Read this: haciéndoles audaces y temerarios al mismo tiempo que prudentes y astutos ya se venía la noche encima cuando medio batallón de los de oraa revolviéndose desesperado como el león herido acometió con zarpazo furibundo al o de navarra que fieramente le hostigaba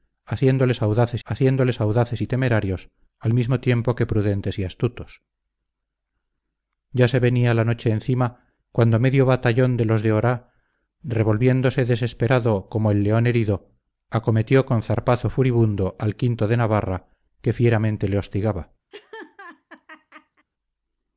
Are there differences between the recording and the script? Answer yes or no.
yes